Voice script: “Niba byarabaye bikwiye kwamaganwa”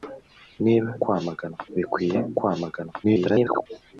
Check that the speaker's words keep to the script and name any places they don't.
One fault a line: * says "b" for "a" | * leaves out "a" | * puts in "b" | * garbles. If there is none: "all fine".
* says "kwamaganwa" for "byarabaye"
* garbles